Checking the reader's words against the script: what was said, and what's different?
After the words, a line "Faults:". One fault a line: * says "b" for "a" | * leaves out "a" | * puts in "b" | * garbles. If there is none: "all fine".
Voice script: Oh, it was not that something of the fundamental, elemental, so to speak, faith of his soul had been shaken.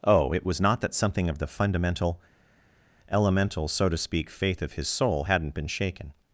Oh, it was not that something of the fundamental, elemental, so to speak, faith of his soul hadn't been shaken.
Faults:
* says "hadn't" for "had"